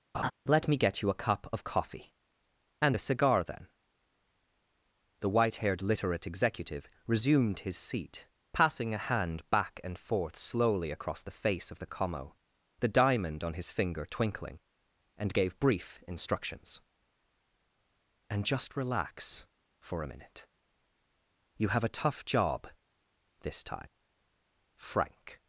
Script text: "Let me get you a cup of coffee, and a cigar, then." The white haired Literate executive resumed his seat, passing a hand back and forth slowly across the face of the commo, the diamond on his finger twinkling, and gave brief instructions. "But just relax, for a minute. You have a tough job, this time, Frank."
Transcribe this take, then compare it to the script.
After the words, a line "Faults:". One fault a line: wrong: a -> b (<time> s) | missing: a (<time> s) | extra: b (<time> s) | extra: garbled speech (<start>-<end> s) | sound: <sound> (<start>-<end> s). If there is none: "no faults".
"Let me get you a cup of coffee, and a cigar, then." The white haired Literate executive resumed his seat, passing a hand back and forth slowly across the face of the commo, the diamond on his finger twinkling, and gave brief instructions. "And just relax, for a minute. You have a tough job, this time, Frank."
Faults:
sound: laugh (0.1-0.3 s)
wrong: But -> And (18.3 s)